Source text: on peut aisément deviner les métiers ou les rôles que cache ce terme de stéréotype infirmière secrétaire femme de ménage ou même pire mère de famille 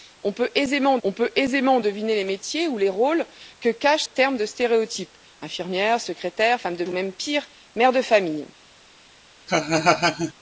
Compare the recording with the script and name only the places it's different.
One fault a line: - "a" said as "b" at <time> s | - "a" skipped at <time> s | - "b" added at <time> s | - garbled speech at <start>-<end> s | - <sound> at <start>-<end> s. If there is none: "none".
- "on peut aisément" added at 1.0 s
- "ce" skipped at 4.0 s
- "ménage" skipped at 6.8 s
- laugh at 9.5-10.3 s